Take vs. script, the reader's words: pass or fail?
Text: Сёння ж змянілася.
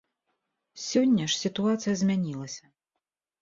fail